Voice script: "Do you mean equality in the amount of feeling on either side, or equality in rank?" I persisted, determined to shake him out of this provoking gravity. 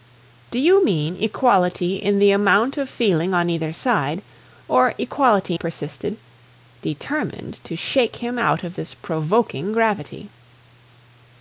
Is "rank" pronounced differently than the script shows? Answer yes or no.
yes